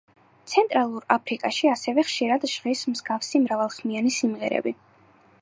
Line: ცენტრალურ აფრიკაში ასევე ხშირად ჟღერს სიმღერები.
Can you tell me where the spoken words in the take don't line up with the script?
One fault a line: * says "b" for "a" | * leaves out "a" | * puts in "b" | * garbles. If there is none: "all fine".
* puts in "მსგავსი მრავალხმიანი"